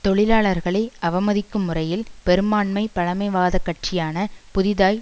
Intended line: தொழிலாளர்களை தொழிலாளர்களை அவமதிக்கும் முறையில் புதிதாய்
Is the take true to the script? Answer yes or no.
no